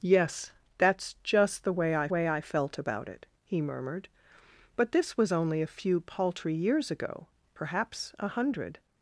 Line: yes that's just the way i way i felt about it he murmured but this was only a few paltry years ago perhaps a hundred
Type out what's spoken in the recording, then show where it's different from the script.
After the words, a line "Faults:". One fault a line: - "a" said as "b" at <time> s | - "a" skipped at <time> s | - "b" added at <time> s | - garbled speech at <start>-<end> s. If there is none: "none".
yes that's just the way i way i felt about it he murmured but this was only a few paltry years ago perhaps a hundred
Faults:
none